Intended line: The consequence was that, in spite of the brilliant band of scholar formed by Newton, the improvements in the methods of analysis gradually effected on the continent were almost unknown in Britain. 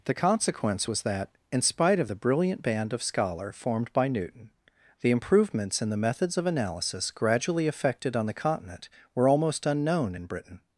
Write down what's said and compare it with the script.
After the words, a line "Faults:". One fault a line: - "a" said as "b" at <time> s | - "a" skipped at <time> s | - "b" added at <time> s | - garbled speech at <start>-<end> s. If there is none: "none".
The consequence was that, in spite of the brilliant band of scholar formed by Newton, the improvements in the methods of analysis gradually effected on the continent were almost unknown in Britain.
Faults:
none